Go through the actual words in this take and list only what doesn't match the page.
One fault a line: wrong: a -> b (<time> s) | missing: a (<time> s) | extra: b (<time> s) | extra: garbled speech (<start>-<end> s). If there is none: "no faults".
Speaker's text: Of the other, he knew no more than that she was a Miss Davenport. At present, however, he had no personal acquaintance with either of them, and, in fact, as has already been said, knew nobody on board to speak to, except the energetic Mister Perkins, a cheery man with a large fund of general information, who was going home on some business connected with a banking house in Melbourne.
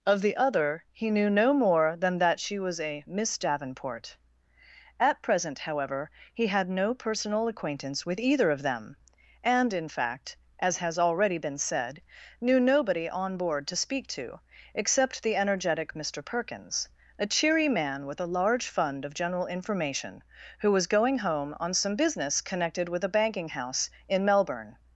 no faults